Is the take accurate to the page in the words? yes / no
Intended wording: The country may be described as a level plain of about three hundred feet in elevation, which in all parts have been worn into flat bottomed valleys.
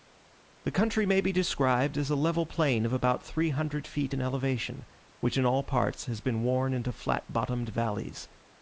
no